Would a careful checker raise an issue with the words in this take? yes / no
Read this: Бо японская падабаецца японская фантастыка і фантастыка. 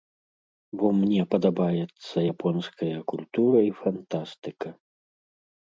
yes